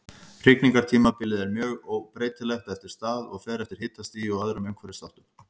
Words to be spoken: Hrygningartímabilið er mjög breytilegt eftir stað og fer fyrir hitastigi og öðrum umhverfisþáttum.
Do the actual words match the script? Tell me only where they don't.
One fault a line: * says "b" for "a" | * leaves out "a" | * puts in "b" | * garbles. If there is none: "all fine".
* says "eftir" for "fyrir"